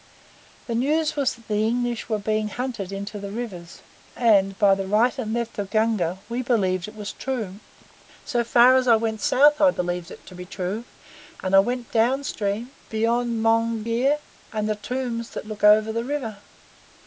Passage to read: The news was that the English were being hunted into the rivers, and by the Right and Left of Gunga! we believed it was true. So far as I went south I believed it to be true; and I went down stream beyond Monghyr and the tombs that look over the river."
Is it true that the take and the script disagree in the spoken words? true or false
false